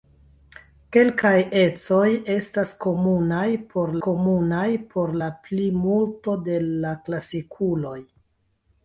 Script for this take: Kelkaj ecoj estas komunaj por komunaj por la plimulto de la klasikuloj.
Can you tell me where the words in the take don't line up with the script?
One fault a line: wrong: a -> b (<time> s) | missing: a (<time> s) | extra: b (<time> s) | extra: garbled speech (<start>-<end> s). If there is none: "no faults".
no faults